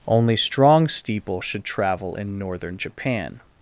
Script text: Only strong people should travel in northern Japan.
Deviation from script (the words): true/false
true